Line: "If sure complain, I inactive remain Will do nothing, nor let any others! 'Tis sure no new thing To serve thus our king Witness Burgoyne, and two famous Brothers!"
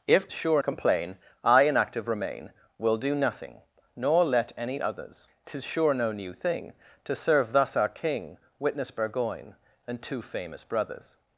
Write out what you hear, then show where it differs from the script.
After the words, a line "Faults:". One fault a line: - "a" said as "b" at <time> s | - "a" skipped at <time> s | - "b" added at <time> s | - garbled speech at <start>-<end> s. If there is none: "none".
"If sure complain, I inactive remain Will do nothing, nor let any others! 'Tis sure no new thing To serve thus our king Witness Burgoyne, and two famous Brothers!"
Faults:
none